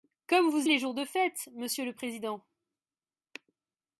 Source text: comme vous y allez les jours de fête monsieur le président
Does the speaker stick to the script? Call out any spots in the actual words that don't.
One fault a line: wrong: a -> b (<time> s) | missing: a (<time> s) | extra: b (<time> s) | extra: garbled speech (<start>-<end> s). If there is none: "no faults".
missing: y allez (0.7 s)